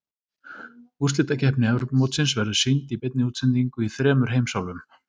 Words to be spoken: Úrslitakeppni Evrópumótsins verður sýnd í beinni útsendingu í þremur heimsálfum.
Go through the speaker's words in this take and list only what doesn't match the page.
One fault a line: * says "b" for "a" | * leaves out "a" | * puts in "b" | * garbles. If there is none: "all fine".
all fine